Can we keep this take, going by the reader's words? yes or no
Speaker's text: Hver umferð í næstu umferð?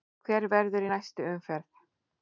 no